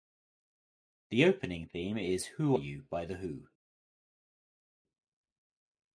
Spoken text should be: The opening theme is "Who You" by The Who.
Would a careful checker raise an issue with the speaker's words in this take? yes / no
no